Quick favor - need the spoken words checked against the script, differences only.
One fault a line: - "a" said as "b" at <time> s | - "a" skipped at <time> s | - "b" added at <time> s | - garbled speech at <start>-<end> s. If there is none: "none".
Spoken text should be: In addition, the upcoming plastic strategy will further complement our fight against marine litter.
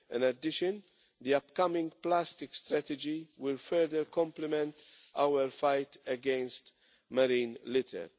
none